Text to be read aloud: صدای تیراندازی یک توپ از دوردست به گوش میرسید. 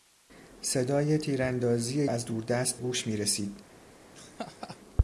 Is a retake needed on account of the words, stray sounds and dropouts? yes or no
yes